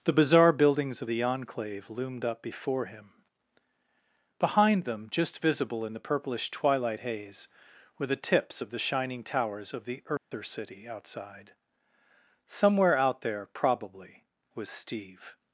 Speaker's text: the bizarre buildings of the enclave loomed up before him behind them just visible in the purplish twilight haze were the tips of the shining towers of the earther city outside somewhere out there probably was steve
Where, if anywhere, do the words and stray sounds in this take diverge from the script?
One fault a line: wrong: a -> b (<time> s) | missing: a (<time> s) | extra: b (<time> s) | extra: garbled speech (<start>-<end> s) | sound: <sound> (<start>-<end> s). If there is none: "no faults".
sound: dropout (10.2-10.3 s)